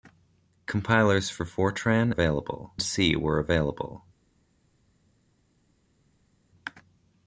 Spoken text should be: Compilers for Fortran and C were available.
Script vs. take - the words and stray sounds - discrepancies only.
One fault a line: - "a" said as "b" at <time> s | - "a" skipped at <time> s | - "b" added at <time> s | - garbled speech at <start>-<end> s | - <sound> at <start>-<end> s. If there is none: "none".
- "and" said as "available" at 2.1 s